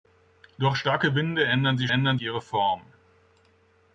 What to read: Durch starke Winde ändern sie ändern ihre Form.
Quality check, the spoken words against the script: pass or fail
pass